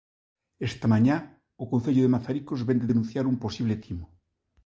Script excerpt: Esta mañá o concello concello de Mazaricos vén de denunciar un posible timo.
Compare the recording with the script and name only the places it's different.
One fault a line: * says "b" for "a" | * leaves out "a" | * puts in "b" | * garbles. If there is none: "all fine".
* leaves out "concello"